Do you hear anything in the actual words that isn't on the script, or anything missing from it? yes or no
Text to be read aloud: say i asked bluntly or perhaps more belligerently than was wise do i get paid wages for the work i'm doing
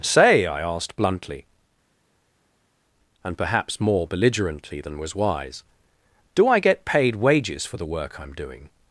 yes